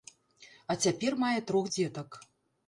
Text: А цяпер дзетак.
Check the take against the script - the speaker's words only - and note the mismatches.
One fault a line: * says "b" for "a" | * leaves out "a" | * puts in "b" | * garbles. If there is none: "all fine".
* puts in "мае трох"